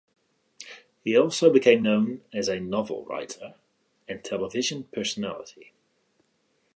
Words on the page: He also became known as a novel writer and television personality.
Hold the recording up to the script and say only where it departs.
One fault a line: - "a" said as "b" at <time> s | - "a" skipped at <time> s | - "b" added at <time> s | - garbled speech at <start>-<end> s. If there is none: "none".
none